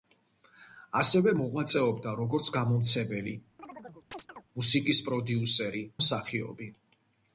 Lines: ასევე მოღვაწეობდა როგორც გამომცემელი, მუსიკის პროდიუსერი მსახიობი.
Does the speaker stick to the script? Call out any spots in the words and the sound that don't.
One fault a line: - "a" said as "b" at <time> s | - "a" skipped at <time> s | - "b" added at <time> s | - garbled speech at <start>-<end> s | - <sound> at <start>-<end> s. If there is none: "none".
- chirp at 3.6-4.4 s